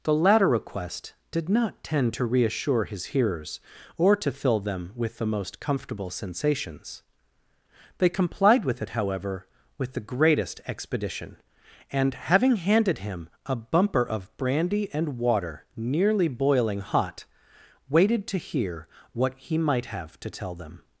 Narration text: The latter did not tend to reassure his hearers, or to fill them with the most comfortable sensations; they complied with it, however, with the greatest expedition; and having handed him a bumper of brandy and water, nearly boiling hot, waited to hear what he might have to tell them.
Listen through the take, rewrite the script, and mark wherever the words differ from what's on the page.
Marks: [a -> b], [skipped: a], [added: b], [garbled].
The latter [added: request] did not tend to reassure his hearers, or to fill them with the most comfortable sensations; they complied with it, however, with the greatest expedition; and having handed him a bumper of brandy and water, nearly boiling hot, waited to hear what he might have to tell them.